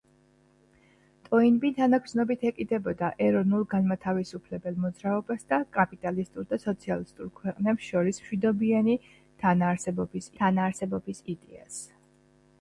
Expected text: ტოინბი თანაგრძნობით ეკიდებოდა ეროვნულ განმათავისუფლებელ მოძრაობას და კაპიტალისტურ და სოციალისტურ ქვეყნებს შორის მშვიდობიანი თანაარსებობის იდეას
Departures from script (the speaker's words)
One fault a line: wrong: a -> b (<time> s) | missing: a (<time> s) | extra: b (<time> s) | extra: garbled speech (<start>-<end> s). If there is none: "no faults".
extra: თანაარსებობის (10.4 s)